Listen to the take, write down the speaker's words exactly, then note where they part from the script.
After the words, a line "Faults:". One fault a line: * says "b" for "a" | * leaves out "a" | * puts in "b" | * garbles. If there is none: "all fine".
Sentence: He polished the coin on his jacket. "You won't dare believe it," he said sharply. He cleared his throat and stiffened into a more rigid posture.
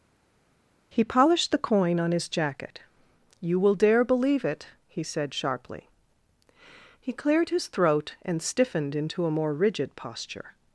He polished the coin on his jacket. "You will dare believe it," he said sharply. He cleared his throat and stiffened into a more rigid posture.
Faults:
* says "will" for "won't"